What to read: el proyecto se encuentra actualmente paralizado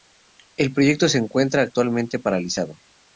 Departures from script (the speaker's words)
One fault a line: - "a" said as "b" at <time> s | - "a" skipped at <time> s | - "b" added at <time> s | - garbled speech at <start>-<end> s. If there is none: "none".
none